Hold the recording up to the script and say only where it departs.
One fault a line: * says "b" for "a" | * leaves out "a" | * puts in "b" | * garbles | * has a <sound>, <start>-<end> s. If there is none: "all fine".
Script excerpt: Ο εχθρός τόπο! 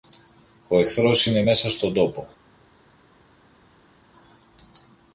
* puts in "είναι μέσα στον"